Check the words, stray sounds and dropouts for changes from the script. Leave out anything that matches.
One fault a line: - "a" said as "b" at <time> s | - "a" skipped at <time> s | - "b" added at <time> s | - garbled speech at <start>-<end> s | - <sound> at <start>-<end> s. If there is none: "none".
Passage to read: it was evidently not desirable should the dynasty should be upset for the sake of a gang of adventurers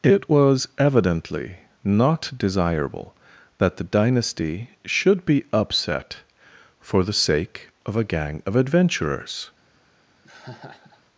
- "should" said as "that" at 3.6 s
- laugh at 10.2-11.0 s